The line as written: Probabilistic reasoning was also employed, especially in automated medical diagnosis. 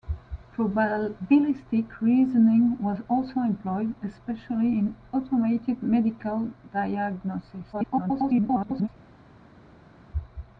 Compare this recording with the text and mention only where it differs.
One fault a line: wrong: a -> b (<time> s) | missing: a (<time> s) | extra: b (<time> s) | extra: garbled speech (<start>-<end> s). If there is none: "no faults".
extra: garbled speech (7.7-8.9 s)